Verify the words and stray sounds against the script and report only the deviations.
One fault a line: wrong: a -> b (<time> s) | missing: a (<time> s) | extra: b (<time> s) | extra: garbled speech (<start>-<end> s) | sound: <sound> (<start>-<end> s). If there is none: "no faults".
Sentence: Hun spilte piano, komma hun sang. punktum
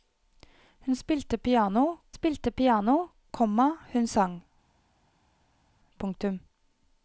extra: spilte piano (2.1 s)